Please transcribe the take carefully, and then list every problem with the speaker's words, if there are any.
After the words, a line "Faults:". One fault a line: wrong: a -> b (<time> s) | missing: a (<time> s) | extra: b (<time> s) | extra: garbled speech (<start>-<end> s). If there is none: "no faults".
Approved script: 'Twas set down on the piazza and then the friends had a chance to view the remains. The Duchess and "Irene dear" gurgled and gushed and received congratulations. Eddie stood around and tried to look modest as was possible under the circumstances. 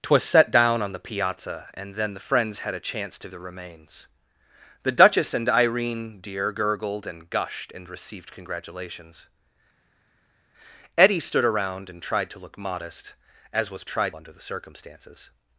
'Twas set down on the piazza and then the friends had a chance to the remains. The Duchess and "Irene dear" gurgled and gushed and received congratulations. Eddie stood around and tried to look modest as was tried under the circumstances.
Faults:
missing: view (3.3 s)
wrong: possible -> tried (13.9 s)